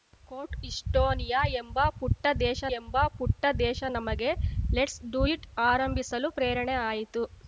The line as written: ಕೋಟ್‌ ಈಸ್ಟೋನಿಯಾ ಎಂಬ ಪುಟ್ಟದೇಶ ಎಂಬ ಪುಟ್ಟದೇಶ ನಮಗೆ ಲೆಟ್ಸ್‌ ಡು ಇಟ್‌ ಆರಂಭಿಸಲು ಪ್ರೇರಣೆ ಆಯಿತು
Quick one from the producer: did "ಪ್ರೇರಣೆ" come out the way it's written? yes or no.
yes